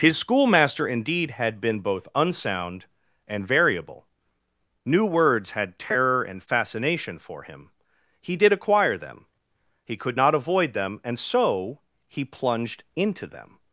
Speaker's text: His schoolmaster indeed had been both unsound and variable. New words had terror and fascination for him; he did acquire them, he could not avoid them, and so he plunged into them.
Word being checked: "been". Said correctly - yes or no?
yes